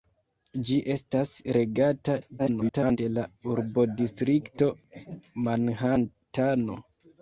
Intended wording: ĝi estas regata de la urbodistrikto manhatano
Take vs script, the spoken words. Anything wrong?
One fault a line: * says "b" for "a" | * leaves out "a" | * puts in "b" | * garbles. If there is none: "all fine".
* garbles